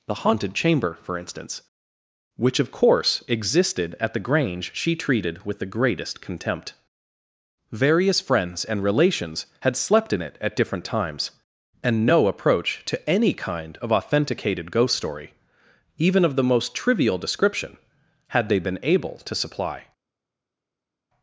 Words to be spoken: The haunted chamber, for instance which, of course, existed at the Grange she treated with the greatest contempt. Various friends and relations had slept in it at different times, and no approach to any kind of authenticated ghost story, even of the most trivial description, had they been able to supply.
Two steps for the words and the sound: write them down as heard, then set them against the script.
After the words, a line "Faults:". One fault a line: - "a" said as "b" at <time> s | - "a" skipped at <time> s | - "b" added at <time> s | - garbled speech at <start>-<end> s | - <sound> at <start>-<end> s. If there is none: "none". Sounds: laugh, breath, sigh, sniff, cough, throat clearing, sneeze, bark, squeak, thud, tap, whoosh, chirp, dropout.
The haunted chamber, for instance which, of course, existed at the Grange she treated with the greatest contempt. Various friends and relations had slept in it at different times, and no approach to any kind of authenticated ghost story, even of the most trivial description, had they been able to supply.
Faults:
none